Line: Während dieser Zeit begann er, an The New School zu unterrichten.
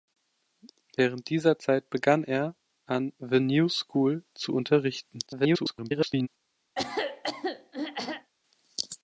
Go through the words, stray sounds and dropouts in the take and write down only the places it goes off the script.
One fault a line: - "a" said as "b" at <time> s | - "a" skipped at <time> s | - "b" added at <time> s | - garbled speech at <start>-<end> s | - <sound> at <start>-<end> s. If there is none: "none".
- garbled speech at 5.3-6.3 s
- throat clearing at 6.8-8.3 s